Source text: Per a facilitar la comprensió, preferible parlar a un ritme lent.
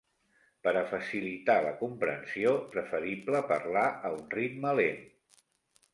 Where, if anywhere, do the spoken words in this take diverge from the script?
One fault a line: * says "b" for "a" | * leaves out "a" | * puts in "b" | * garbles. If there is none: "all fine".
all fine